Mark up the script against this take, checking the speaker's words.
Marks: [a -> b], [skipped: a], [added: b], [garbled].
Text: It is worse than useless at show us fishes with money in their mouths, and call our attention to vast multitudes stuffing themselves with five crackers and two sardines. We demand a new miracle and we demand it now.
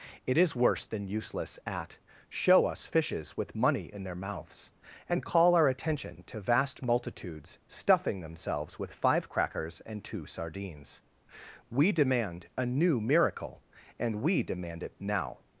It is worse than useless at show us fishes with money in their mouths, and call our attention to vast multitudes stuffing themselves with five crackers and two sardines. We demand a new miracle and we demand it now.